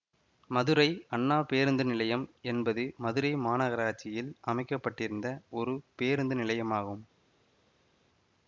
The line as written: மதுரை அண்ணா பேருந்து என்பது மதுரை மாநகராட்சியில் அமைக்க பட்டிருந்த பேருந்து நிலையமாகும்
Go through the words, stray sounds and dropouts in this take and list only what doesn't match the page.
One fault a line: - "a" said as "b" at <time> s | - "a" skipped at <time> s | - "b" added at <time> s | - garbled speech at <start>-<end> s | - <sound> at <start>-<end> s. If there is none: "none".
- "நிலையம்" added at 1.8 s
- "ஒரு" added at 5.5 s